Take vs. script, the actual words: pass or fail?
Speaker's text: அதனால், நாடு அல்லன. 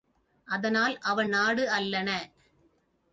fail